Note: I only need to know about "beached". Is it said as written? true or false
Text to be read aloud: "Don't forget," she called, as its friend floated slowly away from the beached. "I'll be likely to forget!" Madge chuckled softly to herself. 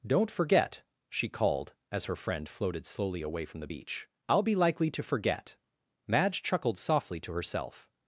false